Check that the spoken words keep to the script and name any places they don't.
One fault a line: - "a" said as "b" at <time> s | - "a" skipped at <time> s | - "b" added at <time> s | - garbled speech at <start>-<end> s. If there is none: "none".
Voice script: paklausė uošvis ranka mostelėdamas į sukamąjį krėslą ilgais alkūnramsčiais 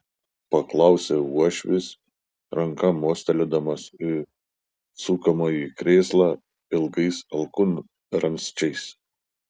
none